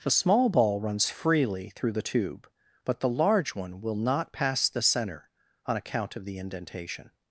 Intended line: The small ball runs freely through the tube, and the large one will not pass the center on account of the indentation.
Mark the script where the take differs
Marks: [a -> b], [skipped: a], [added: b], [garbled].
The small ball runs freely through the tube, [and -> but] the large one will not pass the center on account of the indentation.